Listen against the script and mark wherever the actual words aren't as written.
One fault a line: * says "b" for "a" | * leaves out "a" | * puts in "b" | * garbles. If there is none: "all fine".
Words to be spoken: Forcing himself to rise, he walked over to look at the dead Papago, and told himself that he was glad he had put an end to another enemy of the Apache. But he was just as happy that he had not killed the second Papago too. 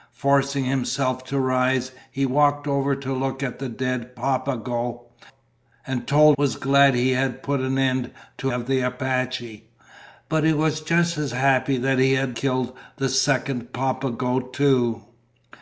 * leaves out "himself that he"
* leaves out "another enemy"
* leaves out "not"